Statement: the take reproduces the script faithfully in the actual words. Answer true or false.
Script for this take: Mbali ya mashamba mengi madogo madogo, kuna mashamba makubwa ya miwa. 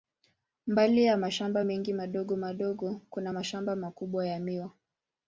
true